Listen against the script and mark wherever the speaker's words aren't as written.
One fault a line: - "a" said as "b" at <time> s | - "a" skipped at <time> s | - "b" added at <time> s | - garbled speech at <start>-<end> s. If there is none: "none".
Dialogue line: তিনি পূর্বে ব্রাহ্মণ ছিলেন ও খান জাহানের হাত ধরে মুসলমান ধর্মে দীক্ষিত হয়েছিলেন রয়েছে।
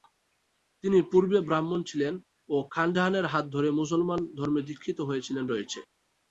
none